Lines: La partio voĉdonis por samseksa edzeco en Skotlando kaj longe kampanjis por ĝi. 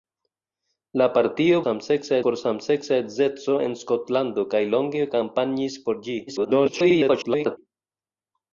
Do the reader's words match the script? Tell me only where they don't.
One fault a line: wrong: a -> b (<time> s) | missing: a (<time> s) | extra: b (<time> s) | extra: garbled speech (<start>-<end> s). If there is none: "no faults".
wrong: voĉdonis -> samseksa (1.6 s)
extra: garbled speech (6.3-7.6 s)